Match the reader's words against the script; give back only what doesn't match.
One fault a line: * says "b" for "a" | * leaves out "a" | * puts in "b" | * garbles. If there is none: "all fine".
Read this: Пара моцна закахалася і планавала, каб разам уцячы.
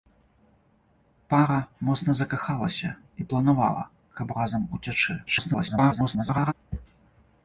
* garbles